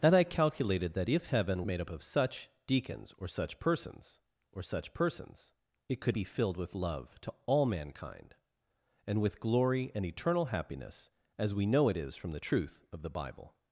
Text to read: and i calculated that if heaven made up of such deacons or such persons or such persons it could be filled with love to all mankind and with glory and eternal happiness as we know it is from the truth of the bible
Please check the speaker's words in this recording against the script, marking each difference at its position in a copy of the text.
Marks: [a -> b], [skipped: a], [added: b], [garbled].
and i calculated that if heaven made up of such deacons or such persons or such persons it could be filled with love to all mankind and with glory and eternal happiness as we know it is from the truth of the bible